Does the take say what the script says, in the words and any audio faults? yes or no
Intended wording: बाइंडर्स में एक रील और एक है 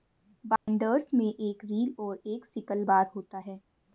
no